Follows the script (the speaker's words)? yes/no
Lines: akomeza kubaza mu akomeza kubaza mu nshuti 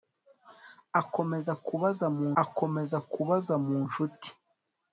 yes